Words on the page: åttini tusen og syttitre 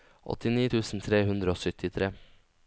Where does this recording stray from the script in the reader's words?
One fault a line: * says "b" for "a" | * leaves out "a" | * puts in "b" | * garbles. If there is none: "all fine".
* puts in "tre hundre"